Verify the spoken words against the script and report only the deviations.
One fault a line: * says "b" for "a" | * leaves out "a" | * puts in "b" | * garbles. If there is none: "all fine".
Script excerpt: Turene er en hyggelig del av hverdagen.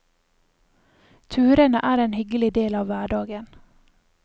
all fine